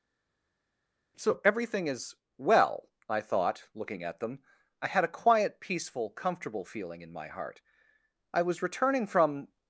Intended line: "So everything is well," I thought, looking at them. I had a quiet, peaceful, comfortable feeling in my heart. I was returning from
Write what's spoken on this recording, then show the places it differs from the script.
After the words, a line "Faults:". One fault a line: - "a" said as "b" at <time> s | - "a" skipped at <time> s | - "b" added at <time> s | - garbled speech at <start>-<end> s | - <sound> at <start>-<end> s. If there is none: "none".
"So everything is well," I thought, looking at them. I had a quiet, peaceful, comfortable feeling in my heart. I was returning from
Faults:
none